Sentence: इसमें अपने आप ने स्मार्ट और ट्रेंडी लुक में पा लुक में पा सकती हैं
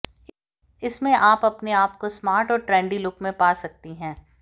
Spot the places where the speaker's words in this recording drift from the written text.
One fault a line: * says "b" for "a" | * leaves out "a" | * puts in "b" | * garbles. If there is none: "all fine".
* puts in "आप"
* says "को" for "ने"
* leaves out "लुक में पा"